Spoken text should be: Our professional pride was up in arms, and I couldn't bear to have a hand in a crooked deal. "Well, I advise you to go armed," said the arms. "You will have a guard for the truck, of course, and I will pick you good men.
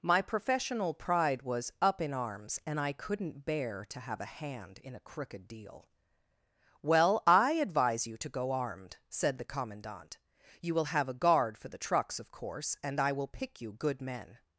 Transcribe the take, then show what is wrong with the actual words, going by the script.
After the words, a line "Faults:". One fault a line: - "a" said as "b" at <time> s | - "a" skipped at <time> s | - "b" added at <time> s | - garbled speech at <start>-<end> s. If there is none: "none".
My professional pride was up in arms, and I couldn't bear to have a hand in a crooked deal. "Well, I advise you to go armed," said the commandant. "You will have a guard for the trucks, of course, and I will pick you good men.
Faults:
- "Our" said as "My" at 0.0 s
- "arms" said as "commandant" at 9.4 s
- "truck" said as "trucks" at 11.8 s